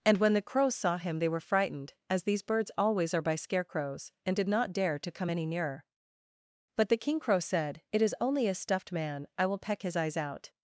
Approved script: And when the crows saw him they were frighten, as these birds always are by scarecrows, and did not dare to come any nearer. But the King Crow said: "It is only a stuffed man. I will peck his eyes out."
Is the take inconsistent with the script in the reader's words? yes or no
yes